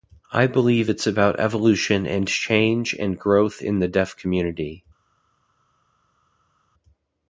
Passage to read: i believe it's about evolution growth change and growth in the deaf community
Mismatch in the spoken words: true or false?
true